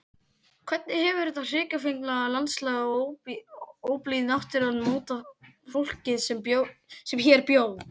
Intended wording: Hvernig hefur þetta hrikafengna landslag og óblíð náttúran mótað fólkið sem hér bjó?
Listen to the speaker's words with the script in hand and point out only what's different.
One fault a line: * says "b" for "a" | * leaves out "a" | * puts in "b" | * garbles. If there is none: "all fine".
all fine